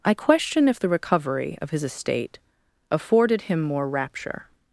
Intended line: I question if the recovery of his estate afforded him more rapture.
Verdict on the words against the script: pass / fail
pass